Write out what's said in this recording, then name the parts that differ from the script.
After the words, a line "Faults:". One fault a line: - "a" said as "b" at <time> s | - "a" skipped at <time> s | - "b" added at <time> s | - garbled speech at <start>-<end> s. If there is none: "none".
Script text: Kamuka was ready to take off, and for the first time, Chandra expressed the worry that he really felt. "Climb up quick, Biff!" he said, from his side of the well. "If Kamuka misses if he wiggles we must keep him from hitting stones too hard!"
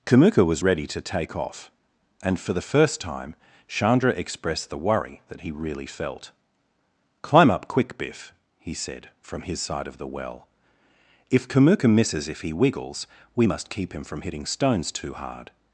Kamuka was ready to take off, and for the first time, Chandra expressed the worry that he really felt. "Climb up quick, Biff!" he said, from his side of the well. "If Kamuka misses if he wiggles we must keep him from hitting stones too hard!"
Faults:
none